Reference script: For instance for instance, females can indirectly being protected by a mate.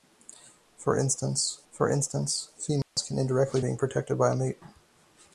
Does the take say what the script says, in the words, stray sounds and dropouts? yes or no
no